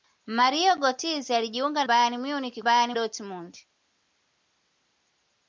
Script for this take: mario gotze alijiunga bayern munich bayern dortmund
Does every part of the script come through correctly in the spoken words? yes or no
yes